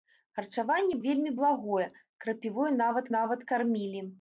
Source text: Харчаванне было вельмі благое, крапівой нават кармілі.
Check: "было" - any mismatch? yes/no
yes